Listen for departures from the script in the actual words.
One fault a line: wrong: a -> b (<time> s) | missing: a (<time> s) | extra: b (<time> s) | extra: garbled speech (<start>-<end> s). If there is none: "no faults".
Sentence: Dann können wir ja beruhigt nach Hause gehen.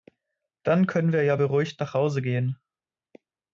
no faults